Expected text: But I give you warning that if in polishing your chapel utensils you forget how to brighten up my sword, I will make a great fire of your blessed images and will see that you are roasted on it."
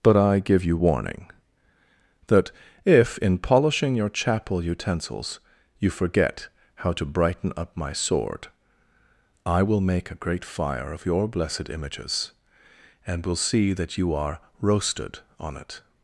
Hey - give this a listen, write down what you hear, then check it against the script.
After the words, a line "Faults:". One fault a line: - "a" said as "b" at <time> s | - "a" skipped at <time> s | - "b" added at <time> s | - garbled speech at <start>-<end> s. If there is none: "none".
But I give you warning that if in polishing your chapel utensils you forget how to brighten up my sword, I will make a great fire of your blessed images and will see that you are roasted on it."
Faults:
none